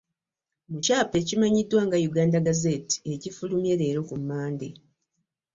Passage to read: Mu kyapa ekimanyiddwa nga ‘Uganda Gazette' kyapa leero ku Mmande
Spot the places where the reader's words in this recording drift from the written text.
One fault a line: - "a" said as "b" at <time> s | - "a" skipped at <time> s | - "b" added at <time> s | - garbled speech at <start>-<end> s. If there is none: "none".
- "kyapa" said as "ekifulumye" at 3.1 s